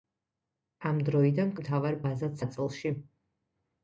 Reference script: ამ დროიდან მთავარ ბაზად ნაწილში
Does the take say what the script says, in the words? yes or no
yes